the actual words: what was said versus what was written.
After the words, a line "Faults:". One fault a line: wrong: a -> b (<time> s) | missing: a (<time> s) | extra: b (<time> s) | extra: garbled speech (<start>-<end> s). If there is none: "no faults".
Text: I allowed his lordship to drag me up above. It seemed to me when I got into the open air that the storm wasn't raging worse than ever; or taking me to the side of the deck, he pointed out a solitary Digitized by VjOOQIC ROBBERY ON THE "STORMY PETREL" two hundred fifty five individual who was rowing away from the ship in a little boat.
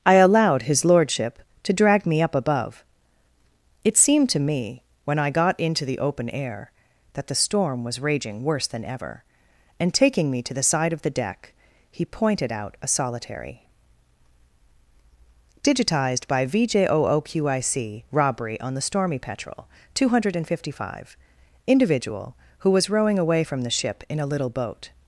I allowed his lordship to drag me up above. It seemed to me when I got into the open air that the storm was raging worse than ever; and taking me to the side of the deck, he pointed out a solitary Digitized by VjOOQIC ROBBERY ON THE "STORMY PETREL" two hundred fifty five individual who was rowing away from the ship in a little boat.
Faults:
wrong: wasn't -> was (7.8 s)
wrong: or -> and (9.8 s)